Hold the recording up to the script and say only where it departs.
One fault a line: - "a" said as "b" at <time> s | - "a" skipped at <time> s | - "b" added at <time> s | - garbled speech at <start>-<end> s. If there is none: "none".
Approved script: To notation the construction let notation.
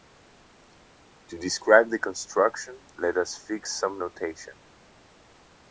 - "notation" said as "describe" at 1.4 s
- "us fix some" added at 3.2 s